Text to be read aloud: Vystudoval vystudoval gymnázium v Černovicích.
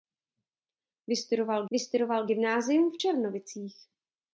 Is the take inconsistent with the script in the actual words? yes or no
no